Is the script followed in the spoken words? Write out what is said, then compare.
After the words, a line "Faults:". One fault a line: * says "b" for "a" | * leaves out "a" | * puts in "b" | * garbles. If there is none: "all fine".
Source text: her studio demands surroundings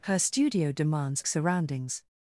her studio demands surroundings
Faults:
all fine